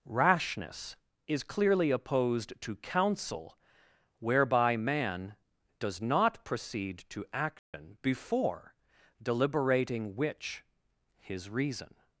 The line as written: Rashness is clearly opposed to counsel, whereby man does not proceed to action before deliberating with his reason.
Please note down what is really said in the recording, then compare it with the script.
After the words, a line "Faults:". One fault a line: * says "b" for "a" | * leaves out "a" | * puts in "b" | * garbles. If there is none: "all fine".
Rashness is clearly opposed to counsel, whereby man does not proceed to action before deliberating which his reason.
Faults:
* says "which" for "with"